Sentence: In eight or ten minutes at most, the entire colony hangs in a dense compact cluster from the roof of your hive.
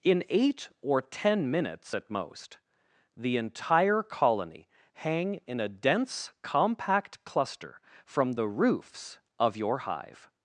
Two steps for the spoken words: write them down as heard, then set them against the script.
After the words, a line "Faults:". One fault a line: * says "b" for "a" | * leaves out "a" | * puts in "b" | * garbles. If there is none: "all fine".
In eight or ten minutes at most, the entire colony hang in a dense compact cluster from the roofs of your hive.
Faults:
* says "hang" for "hangs"
* says "roofs" for "roof"